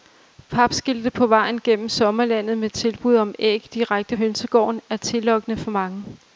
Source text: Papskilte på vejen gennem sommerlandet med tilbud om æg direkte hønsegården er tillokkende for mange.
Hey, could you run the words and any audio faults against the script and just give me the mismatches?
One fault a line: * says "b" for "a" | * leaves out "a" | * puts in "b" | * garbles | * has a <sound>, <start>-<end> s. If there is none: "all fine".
all fine